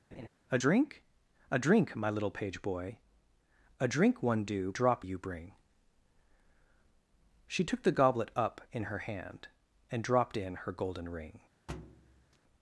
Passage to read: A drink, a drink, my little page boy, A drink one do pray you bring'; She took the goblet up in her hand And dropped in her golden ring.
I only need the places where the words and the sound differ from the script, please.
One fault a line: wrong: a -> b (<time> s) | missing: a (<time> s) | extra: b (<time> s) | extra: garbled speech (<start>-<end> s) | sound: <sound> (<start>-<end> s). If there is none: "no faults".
sound: laugh (0.1-0.3 s)
wrong: pray -> dropped (4.7 s)
sound: thud (11.7-12.4 s)